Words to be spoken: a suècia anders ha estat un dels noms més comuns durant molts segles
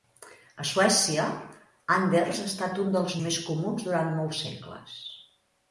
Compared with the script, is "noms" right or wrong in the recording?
wrong